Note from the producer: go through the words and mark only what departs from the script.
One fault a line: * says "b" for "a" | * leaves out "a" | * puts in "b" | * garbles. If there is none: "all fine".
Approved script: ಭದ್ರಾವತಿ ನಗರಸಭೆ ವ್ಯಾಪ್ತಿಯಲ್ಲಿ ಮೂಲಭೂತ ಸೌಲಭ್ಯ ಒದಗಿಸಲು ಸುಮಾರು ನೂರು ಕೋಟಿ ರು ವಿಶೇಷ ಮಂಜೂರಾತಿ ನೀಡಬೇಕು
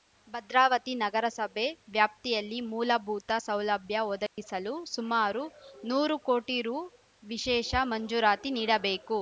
all fine